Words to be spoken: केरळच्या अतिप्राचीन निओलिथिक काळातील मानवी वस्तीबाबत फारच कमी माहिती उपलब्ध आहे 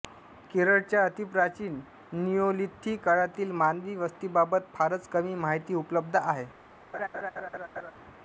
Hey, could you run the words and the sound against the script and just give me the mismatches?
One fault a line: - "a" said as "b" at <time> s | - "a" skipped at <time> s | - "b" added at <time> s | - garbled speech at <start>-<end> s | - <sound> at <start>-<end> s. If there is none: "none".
- laugh at 6.9-7.9 s